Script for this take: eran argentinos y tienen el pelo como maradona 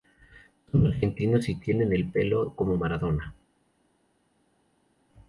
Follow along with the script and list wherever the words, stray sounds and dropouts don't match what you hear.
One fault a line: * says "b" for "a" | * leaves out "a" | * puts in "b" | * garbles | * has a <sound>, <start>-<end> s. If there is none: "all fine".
* says "son" for "eran"